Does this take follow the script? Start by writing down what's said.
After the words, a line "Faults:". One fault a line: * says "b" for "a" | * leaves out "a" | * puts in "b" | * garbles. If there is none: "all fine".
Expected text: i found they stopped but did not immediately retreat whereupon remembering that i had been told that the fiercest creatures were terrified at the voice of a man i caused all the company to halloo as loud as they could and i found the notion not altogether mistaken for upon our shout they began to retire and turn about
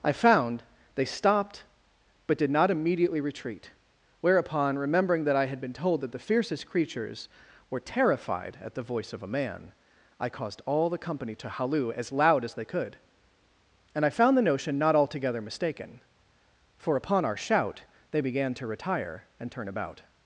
i found they stopped but did not immediately retreat whereupon remembering that i had been told that the fiercest creatures were terrified at the voice of a man i caused all the company to halloo as loud as they could and i found the notion not altogether mistaken for upon our shout they began to retire and turn about
Faults:
all fine